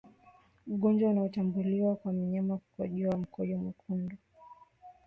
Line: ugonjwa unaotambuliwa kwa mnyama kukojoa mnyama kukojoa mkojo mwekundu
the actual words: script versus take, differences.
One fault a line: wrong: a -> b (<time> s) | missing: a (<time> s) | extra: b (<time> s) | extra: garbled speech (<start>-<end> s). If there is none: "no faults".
missing: mnyama kukojoa (3.2 s)